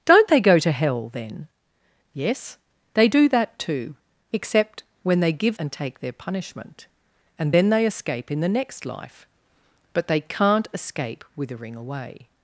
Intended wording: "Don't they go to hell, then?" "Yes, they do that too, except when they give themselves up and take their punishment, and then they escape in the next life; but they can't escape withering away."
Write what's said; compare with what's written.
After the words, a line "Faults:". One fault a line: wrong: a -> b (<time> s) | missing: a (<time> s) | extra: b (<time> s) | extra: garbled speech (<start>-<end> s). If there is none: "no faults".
"Don't they go to hell, then?" "Yes, they do that too, except when they give and take their punishment, and then they escape in the next life; but they can't escape withering away."
Faults:
missing: themselves up (5.6 s)